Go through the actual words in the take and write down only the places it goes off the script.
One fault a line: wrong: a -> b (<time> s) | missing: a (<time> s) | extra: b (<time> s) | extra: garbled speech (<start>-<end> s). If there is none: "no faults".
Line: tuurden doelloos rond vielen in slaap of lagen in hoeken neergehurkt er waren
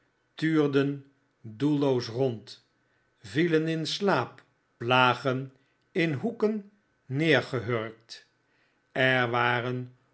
missing: of (4.4 s)